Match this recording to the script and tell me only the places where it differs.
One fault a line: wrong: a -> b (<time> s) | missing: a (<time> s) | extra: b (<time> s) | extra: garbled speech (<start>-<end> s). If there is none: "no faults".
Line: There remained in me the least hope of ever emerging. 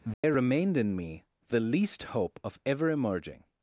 no faults